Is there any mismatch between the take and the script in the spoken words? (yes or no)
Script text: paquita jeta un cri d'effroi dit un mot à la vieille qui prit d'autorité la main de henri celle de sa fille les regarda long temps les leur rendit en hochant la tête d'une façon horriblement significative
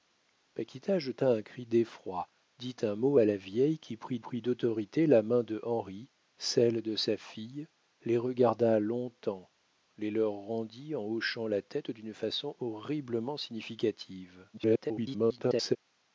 yes